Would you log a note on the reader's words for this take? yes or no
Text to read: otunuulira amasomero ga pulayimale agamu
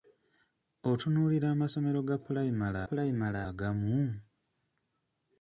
yes